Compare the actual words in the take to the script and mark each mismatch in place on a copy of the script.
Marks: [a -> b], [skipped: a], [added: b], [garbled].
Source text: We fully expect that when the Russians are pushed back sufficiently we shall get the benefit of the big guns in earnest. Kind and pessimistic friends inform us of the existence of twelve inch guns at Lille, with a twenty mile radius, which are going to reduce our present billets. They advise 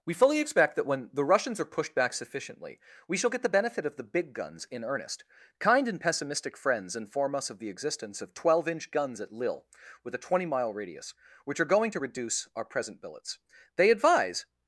We fully expect that when the Russians are pushed back sufficiently we shall get the benefit of the big guns in earnest. Kind and pessimistic friends inform us of the existence of twelve inch guns at Lille, with a twenty mile radius, which are going to reduce our present billets. They advise